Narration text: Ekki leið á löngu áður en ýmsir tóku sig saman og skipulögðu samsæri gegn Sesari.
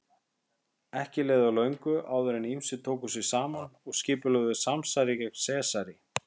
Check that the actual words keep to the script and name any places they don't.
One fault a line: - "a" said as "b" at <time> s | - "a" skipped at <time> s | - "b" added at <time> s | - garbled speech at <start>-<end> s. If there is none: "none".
none